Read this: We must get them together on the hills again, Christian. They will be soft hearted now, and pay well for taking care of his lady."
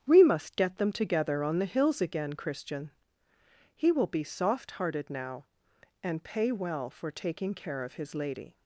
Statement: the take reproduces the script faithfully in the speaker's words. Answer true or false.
false